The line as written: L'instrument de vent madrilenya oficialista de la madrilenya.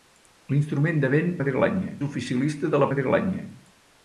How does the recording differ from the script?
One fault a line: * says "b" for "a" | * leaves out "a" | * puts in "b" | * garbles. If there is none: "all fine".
all fine